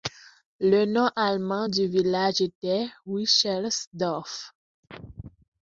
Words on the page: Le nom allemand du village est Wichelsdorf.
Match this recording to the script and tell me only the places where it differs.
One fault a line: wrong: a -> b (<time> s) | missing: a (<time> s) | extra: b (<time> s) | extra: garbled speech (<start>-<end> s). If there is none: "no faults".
wrong: est -> était (2.4 s)